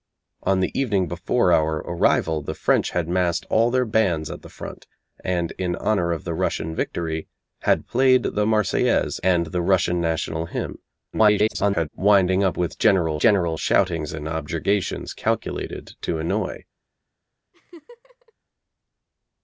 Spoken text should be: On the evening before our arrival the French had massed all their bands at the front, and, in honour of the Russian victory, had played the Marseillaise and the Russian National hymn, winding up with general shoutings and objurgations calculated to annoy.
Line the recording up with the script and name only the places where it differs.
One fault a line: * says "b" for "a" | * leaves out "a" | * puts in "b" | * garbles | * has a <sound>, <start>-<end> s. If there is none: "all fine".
* garbles
* puts in "general"
* has a laugh, 17.5-18.3 s